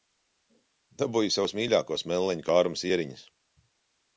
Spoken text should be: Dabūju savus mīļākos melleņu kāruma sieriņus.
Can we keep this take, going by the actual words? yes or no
yes